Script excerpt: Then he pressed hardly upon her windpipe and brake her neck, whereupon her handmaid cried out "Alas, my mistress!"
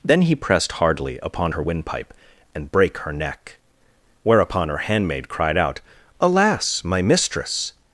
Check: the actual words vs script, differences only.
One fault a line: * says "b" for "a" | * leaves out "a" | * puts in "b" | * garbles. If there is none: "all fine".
all fine